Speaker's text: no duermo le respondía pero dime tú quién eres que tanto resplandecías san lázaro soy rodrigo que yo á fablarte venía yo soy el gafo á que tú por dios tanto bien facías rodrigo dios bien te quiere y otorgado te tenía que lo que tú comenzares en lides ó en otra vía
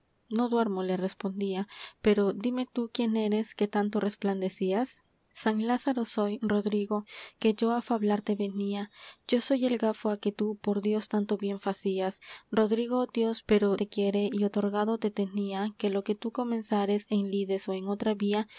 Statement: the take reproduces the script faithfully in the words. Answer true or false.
false